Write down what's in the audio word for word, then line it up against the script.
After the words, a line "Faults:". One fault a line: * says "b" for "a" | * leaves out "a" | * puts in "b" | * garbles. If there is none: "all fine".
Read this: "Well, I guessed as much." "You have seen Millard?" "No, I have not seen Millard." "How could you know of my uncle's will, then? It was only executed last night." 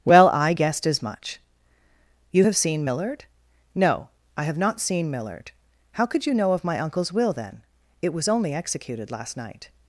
"Well, I guessed as much." "You have seen Millard?" "No, I have not seen Millard." "How could you know of my uncle's will, then? It was only executed last night."
Faults:
all fine